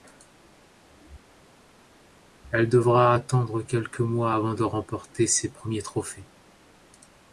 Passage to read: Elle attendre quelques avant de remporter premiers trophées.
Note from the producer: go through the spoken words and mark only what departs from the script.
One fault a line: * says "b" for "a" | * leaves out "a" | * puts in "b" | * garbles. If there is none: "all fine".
* puts in "devra"
* puts in "mois"
* puts in "ses"